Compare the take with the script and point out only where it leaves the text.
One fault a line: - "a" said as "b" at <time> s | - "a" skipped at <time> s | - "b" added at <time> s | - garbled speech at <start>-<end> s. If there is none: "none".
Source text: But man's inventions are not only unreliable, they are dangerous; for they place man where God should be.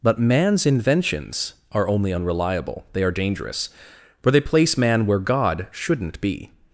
- "not" skipped at 1.9 s
- "should" said as "shouldn't" at 5.7 s